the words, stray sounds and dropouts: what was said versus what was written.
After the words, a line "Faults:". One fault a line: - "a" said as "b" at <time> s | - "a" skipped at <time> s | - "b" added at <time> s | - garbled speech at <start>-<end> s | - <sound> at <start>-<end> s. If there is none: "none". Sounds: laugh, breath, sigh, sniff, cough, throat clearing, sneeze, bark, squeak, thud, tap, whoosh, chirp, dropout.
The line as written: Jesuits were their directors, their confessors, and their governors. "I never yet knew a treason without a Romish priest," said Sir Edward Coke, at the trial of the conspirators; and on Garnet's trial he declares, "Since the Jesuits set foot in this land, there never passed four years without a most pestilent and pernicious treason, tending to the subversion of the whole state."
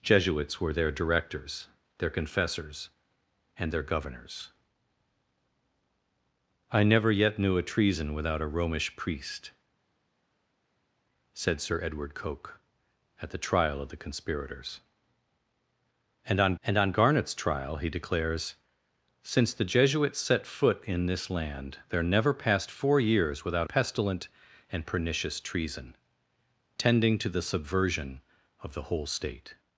Jesuits were their directors, their confessors, and their governors. "I never yet knew a treason without a Romish priest," said Sir Edward Coke, at the trial of the conspirators; and on and on Garnet's trial he declares, "Since the Jesuits set foot in this land, there never passed four years without pestilent and pernicious treason, tending to the subversion of the whole state."
Faults:
- "and on" added at 16.6 s
- "a most" skipped at 23.7 s